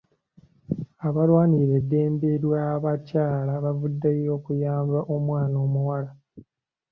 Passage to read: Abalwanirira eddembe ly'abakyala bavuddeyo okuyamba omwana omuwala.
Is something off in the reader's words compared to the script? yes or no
no